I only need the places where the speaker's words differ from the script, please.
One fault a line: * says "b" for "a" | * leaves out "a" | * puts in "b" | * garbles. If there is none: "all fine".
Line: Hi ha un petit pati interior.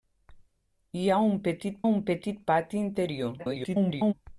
* puts in "un petit"
* garbles